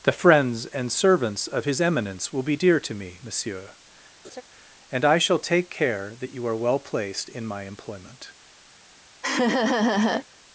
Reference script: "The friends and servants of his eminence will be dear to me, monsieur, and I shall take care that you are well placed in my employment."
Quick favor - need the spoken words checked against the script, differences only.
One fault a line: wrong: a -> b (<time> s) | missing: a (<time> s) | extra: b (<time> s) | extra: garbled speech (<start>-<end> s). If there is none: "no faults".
no faults